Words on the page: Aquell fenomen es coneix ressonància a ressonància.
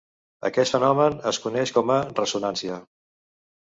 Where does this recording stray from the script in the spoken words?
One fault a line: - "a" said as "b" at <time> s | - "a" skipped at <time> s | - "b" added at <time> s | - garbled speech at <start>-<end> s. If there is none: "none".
- "Aquell" said as "Aquest" at 0.5 s
- "ressonància" said as "com" at 1.8 s